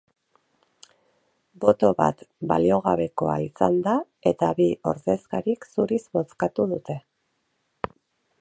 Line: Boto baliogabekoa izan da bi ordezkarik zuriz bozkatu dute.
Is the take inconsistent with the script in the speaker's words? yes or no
yes